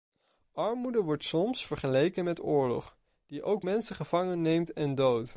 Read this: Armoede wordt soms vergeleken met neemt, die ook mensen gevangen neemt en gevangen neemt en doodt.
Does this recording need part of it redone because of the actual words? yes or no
yes